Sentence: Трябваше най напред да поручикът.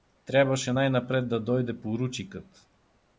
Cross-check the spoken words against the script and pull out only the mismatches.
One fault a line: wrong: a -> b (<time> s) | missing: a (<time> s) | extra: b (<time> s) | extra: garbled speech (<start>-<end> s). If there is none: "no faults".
extra: дойде (1.4 s)